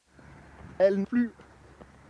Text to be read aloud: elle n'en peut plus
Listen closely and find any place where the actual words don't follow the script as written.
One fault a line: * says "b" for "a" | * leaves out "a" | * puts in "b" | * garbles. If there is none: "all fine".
* leaves out "n'en peut"